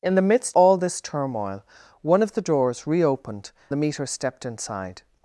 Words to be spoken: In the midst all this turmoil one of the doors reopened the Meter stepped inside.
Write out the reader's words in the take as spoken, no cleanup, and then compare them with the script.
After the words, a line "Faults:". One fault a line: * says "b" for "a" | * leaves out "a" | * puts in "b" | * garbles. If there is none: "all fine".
In the midst all this turmoil one of the doors reopened the Meter stepped inside.
Faults:
all fine